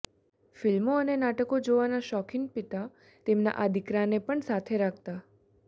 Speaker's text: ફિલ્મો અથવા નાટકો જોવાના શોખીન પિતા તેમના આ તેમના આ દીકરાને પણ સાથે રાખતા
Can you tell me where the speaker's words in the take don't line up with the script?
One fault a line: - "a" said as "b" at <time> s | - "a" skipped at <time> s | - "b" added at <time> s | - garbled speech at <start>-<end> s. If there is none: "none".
- "અથવા" said as "અને" at 0.9 s
- "તેમના આ" skipped at 3.7 s